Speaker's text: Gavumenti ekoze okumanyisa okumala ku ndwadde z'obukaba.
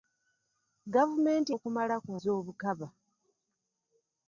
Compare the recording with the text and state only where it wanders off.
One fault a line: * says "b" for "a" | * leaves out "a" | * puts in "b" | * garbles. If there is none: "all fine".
* leaves out "ekoze okumanyisa"
* leaves out "ndwadde"